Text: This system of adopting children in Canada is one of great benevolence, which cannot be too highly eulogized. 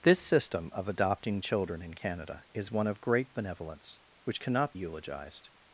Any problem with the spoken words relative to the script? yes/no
yes